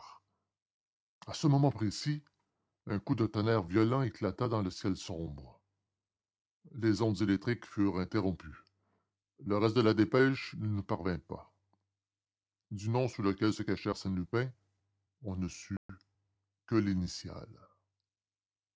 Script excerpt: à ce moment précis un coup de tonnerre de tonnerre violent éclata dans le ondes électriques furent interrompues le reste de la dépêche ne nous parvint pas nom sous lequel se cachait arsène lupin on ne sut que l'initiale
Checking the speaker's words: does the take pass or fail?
fail